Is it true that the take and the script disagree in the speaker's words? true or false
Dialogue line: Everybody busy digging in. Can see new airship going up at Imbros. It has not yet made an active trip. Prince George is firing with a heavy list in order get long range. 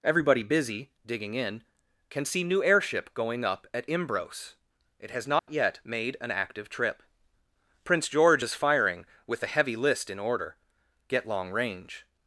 false